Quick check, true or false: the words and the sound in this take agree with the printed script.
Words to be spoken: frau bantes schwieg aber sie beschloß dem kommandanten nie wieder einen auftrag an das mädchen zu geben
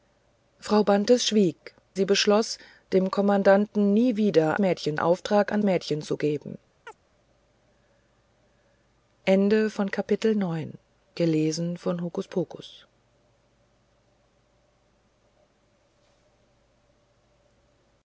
false